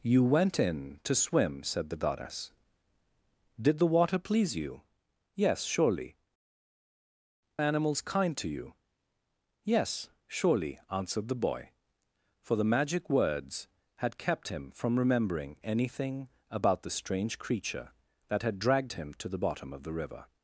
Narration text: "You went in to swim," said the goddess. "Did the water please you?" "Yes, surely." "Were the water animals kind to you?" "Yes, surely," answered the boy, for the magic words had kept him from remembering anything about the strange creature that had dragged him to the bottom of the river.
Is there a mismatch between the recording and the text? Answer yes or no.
yes